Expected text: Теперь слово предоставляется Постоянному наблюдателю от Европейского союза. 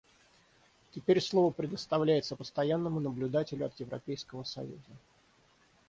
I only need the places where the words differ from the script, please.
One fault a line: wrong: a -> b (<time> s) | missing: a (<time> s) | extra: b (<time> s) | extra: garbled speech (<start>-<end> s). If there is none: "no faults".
no faults